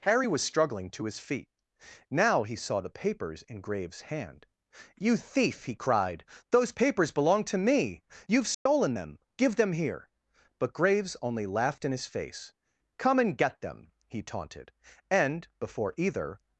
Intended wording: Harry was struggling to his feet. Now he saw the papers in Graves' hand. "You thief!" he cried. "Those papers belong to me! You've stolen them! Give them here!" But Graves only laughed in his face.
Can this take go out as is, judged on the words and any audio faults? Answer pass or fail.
fail